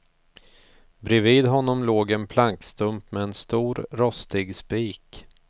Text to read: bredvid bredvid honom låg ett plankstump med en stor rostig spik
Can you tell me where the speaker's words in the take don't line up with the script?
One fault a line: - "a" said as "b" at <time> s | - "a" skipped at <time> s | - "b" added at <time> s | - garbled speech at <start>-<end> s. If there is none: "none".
- "bredvid" skipped at 1.4 s
- "ett" said as "en" at 2.1 s